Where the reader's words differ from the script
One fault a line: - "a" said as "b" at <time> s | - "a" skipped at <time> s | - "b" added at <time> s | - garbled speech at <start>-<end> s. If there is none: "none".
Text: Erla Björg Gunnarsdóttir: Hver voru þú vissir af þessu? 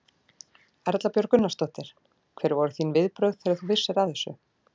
- "þín viðbrögð þegar" added at 2.8 s